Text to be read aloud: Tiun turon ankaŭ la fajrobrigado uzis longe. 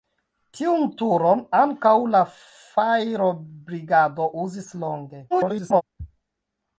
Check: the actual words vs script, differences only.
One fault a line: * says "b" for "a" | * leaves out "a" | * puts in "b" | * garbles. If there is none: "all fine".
* garbles